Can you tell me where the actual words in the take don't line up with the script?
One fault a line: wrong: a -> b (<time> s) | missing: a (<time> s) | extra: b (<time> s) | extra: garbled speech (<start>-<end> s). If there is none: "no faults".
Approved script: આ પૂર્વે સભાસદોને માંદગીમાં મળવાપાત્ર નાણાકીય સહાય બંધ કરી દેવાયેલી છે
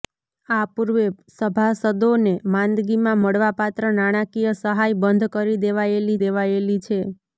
extra: દેવાયેલી (6.2 s)